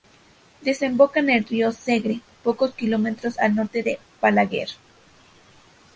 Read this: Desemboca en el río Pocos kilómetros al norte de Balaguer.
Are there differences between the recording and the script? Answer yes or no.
yes